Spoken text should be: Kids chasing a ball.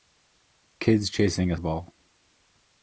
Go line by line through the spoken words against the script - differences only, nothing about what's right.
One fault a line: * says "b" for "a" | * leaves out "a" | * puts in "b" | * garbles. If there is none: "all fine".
all fine